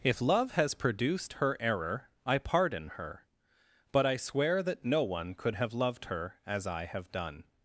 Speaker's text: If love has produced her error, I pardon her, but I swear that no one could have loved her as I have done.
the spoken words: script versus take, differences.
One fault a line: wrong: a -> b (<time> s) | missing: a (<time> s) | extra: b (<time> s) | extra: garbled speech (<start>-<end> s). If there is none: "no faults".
no faults